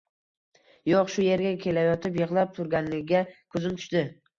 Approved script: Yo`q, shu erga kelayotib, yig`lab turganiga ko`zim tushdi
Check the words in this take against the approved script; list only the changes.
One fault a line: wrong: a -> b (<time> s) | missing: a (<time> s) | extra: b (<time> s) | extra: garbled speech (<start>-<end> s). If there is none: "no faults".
no faults